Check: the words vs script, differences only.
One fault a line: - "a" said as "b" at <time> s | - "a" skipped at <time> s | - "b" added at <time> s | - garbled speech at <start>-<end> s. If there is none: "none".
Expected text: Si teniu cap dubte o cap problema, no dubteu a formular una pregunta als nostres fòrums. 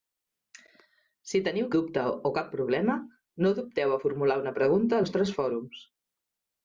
- "cap" skipped at 1.7 s
- "als" skipped at 5.0 s